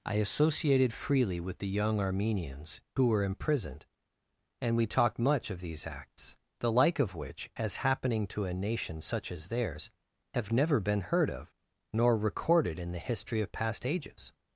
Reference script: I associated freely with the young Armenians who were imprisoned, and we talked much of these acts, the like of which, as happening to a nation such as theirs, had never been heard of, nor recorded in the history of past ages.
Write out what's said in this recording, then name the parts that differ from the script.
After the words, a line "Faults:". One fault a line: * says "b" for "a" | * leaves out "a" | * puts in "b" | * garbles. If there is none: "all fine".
I associated freely with the young Armenians who were imprisoned, and we talked much of these acts, the like of which, as happening to a nation such as theirs, have never been heard of, nor recorded in the history of past ages.
Faults:
* says "have" for "had"